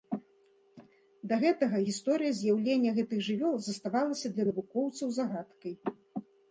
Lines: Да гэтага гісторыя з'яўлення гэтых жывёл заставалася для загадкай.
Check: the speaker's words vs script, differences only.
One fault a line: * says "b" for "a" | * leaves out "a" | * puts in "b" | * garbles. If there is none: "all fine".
* puts in "навукоўцаў"